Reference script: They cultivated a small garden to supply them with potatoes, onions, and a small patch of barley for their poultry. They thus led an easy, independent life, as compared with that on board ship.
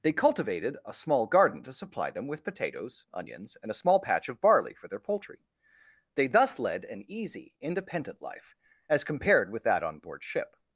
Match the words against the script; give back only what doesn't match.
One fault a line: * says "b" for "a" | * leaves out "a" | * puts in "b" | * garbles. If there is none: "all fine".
all fine